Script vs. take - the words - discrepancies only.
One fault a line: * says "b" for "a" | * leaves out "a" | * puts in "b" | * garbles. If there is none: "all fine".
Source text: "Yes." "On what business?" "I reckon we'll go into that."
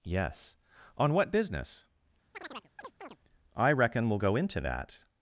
all fine